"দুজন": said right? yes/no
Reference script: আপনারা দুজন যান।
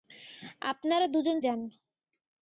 yes